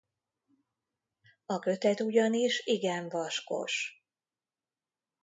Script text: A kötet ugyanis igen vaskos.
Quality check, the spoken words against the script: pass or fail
pass